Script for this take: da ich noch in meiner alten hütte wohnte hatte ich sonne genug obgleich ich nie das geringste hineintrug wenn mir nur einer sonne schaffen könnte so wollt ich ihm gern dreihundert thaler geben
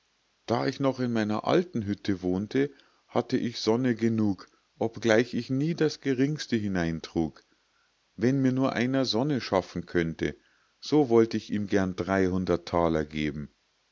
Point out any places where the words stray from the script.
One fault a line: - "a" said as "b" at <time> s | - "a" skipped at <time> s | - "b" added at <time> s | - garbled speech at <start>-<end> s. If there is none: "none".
none